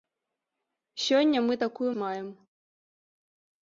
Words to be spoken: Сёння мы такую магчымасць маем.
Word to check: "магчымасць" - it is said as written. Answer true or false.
false